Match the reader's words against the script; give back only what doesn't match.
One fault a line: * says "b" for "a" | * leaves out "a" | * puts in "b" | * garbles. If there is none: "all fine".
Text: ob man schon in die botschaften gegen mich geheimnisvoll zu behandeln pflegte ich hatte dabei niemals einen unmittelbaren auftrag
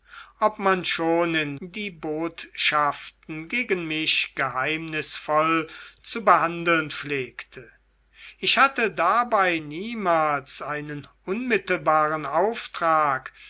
all fine